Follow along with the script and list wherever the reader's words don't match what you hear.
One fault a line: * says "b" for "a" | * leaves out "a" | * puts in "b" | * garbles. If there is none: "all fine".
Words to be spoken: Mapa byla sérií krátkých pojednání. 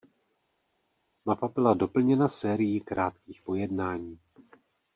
* puts in "doplněna"